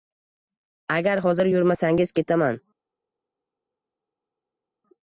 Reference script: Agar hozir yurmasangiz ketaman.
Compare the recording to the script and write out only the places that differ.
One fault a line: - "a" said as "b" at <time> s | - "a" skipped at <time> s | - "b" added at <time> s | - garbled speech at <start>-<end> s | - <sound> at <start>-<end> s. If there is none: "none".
none